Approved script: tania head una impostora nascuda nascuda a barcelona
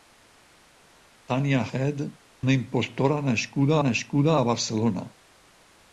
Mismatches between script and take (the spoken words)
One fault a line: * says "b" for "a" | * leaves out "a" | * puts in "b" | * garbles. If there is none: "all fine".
all fine